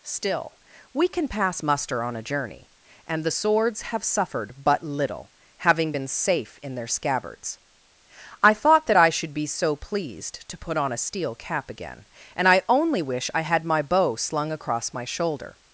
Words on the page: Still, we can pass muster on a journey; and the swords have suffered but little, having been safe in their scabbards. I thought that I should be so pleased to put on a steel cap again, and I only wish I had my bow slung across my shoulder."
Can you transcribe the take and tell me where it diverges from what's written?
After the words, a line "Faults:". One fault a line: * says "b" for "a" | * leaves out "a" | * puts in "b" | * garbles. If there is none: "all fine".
Still, we can pass muster on a journey; and the swords have suffered but little, having been safe in their scabbards. I thought that I should be so pleased to put on a steel cap again, and I only wish I had my bow slung across my shoulder."
Faults:
all fine